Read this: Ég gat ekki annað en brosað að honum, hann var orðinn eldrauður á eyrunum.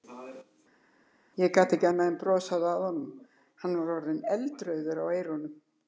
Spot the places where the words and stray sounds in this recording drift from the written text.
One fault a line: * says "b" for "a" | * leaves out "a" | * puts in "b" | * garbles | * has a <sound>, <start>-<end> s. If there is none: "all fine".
all fine